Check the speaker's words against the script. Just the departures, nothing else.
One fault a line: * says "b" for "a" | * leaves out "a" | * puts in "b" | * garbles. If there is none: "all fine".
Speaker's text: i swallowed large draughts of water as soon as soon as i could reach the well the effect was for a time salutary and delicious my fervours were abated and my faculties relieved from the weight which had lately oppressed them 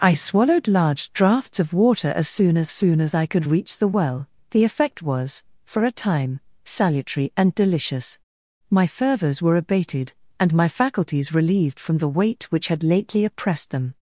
all fine